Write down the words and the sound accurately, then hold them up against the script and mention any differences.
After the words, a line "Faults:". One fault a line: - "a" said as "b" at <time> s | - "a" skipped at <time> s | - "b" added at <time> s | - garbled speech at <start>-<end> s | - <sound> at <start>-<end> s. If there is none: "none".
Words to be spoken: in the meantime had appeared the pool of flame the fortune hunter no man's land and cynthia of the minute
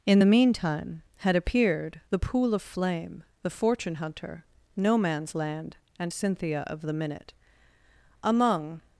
in the meantime had appeared the pool of flame the fortune hunter no man's land and cynthia of the minute among
Faults:
- "among" added at 8.2 s